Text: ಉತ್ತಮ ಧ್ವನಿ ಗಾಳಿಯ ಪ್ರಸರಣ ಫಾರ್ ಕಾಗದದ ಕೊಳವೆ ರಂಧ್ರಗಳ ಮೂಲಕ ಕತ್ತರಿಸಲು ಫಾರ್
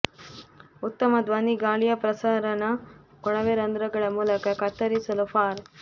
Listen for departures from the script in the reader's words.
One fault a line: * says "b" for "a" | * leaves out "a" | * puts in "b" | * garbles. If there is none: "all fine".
* leaves out "ಫಾರ್ ಕಾಗದದ"